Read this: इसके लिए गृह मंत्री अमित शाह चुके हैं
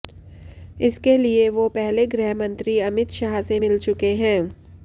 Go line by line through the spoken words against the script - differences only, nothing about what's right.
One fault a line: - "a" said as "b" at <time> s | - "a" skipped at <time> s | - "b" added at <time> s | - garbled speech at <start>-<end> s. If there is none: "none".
- "वो पहले" added at 1.5 s
- "से मिल" added at 3.4 s